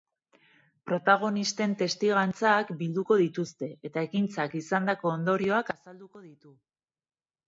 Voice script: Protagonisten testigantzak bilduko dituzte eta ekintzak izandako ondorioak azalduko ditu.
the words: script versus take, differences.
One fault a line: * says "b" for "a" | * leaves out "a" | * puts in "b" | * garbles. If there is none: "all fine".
all fine